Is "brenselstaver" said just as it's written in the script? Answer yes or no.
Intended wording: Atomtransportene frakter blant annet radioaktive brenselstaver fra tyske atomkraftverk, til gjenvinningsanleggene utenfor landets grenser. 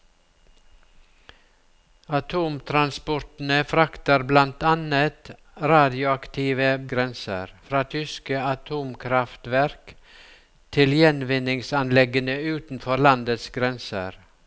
no